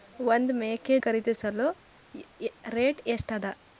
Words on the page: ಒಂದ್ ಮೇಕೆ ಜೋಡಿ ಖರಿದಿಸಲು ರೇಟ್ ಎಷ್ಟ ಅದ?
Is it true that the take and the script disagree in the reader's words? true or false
true